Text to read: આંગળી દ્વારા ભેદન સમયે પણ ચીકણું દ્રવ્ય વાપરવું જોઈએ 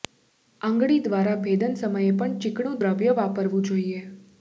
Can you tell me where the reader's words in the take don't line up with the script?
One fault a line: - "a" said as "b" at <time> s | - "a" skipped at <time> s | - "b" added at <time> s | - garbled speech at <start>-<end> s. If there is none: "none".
none